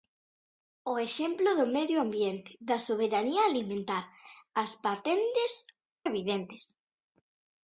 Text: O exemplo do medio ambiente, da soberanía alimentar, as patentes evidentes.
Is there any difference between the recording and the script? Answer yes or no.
no